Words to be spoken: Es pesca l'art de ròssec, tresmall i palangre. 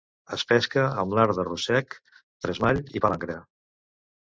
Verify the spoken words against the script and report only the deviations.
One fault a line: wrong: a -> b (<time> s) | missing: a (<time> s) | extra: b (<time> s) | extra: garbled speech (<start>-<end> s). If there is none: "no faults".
extra: amb (1.0 s)